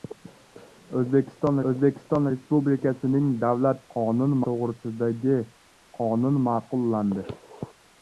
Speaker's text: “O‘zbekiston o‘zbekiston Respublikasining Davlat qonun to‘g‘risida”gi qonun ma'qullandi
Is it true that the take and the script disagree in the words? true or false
false